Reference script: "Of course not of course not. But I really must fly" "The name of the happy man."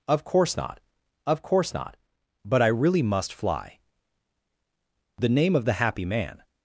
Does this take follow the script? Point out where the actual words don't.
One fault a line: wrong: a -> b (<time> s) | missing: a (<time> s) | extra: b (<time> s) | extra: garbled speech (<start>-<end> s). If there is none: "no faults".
no faults